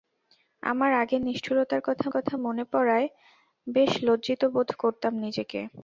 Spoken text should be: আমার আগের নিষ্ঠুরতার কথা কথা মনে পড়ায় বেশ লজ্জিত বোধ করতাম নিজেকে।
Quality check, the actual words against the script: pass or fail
pass